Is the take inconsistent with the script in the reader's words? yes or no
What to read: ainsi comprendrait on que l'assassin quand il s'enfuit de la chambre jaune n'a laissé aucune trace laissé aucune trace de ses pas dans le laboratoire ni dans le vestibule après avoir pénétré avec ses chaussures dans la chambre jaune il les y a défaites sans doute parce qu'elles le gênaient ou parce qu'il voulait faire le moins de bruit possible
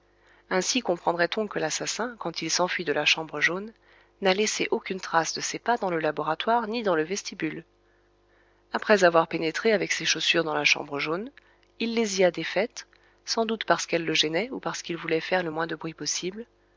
yes